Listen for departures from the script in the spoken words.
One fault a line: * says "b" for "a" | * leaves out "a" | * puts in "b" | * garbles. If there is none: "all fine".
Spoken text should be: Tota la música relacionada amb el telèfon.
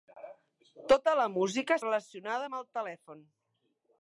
all fine